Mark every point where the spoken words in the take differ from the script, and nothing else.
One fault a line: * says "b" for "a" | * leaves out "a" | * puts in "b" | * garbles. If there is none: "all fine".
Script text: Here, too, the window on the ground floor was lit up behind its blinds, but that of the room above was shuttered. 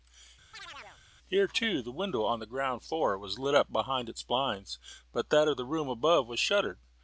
all fine